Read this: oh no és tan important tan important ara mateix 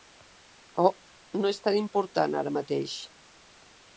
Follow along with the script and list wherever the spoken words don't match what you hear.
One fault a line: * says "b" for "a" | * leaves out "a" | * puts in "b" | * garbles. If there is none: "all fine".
* leaves out "tan important"